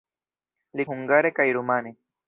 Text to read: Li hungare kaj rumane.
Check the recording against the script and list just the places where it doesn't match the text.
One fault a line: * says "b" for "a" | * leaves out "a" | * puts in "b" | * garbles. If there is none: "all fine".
all fine